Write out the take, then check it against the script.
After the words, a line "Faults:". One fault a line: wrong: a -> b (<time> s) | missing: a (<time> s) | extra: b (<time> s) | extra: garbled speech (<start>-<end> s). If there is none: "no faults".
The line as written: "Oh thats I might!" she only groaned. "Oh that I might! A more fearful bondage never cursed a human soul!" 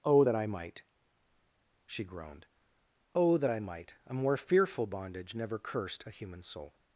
"Oh that I might!" she groaned. "Oh that I might! A more fearful bondage never cursed a human soul!"
Faults:
wrong: thats -> that (0.2 s)
missing: only (2.1 s)